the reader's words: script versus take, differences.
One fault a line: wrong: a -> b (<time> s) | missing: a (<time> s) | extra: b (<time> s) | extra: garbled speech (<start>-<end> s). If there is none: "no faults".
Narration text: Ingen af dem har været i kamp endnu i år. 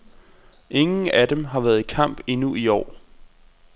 no faults